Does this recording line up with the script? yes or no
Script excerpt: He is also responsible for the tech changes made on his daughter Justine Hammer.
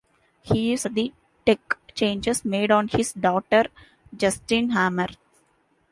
no